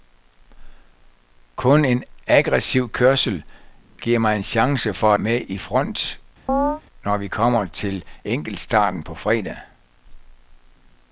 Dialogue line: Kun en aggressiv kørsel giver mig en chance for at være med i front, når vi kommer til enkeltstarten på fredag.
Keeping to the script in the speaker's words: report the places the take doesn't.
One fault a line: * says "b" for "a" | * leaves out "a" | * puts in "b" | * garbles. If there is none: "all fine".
* leaves out "at være"